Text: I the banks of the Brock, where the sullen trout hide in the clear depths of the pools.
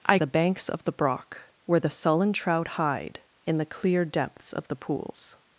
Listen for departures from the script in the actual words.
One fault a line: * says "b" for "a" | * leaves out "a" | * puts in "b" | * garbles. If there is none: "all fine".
all fine